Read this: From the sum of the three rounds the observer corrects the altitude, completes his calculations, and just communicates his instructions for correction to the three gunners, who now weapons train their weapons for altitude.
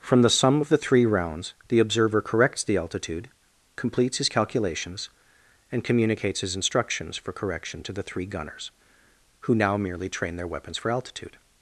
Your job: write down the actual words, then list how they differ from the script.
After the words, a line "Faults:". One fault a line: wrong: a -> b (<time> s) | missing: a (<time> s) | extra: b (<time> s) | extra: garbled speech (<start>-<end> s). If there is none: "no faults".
From the sum of the three rounds the observer corrects the altitude, completes his calculations, and communicates his instructions for correction to the three gunners, who now merely train their weapons for altitude.
Faults:
missing: just (5.8 s)
wrong: weapons -> merely (9.8 s)